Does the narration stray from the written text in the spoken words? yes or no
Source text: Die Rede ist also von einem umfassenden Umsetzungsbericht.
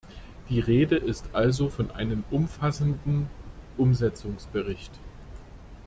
no